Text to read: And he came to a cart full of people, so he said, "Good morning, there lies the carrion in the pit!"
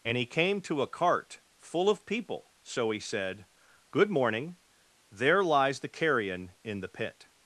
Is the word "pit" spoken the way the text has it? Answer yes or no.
yes